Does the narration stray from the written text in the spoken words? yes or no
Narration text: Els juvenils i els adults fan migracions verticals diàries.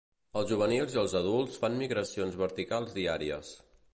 no